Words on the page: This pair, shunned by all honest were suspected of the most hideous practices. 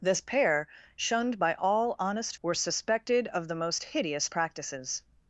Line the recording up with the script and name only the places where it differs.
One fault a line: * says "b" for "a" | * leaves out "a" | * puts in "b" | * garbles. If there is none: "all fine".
all fine